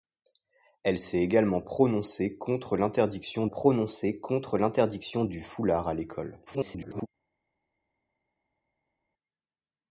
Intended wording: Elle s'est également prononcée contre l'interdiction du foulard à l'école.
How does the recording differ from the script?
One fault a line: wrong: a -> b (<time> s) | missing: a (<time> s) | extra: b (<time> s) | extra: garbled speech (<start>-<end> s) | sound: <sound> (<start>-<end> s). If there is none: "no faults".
extra: prononcée contre l'interdiction (3.5 s)
extra: garbled speech (6.5-7.1 s)